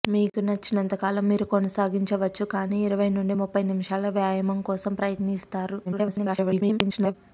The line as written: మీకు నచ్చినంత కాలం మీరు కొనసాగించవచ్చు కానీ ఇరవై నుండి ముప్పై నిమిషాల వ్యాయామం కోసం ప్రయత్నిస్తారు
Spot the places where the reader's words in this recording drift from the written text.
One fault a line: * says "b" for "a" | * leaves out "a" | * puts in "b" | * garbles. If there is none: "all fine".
* garbles